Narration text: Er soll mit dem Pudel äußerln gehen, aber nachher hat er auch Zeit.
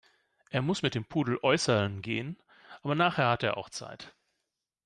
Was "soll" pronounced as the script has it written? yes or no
no